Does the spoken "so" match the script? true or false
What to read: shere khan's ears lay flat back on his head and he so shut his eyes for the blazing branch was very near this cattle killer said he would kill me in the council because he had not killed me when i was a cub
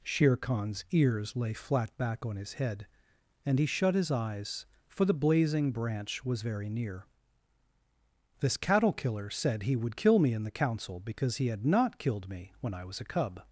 false